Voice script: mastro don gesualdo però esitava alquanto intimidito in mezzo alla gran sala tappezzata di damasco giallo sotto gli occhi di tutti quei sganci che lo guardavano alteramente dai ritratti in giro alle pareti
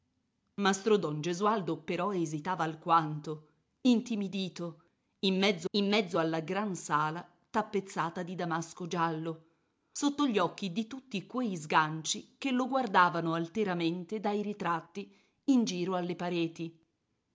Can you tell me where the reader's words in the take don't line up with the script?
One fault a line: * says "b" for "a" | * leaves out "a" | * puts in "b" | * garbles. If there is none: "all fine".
* puts in "in mezzo"